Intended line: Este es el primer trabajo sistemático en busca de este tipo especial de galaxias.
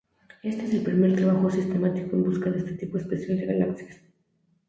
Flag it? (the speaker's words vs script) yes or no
no